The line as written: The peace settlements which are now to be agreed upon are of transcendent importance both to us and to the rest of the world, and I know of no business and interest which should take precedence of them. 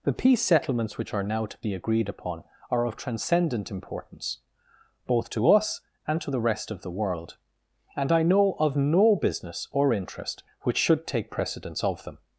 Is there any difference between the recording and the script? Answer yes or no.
yes